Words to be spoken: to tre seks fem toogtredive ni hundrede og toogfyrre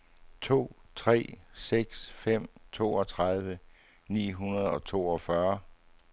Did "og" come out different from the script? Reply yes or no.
no